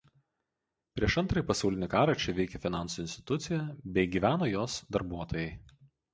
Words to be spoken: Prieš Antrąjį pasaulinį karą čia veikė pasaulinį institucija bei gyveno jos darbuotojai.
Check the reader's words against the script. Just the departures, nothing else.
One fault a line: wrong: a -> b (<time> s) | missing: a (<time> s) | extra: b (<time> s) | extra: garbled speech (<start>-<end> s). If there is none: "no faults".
wrong: pasaulinį -> finansų (2.6 s)